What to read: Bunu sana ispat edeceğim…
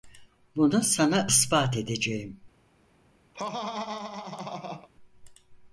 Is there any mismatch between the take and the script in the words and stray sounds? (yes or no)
yes